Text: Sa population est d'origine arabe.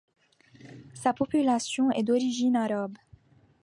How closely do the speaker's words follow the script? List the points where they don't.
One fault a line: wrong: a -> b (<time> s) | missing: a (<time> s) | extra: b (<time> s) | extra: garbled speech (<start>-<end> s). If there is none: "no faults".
no faults